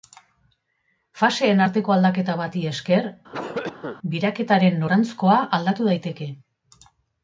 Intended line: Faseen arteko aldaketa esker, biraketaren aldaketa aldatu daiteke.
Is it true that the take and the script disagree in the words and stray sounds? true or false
true